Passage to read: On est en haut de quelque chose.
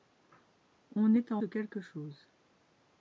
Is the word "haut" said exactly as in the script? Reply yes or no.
no